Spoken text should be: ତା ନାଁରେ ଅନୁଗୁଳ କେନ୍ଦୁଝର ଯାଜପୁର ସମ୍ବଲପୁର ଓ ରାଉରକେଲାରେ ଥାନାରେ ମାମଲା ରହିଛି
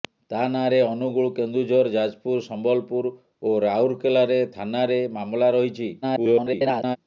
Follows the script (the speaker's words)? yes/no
no